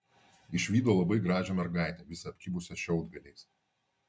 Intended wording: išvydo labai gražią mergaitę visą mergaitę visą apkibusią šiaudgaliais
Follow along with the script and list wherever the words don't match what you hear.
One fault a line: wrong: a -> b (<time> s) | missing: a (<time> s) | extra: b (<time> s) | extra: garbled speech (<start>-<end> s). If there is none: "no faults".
missing: mergaitę visą (2.3 s)